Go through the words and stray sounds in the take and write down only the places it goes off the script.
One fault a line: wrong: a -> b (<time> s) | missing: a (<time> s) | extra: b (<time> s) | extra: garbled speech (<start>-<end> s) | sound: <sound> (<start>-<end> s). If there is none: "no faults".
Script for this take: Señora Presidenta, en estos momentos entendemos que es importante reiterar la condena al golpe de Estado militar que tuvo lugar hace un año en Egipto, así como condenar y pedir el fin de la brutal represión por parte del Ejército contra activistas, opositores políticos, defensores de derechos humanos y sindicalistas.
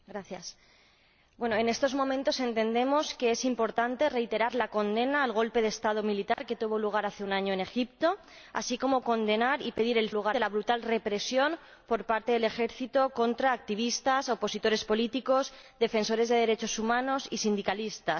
sound: dropout (6.3-6.4 s)
wrong: fin -> lugar (10.1 s)